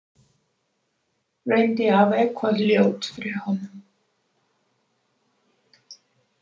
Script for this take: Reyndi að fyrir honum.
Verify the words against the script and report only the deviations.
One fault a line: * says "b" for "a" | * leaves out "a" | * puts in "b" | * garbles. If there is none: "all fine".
* puts in "hafa eitthvað ljótt"